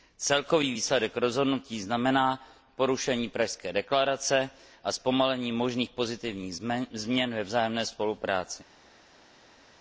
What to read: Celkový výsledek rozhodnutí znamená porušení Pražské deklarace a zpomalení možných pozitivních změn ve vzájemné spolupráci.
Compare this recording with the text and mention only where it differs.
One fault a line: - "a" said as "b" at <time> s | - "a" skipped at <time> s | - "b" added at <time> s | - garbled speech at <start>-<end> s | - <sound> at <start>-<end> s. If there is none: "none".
none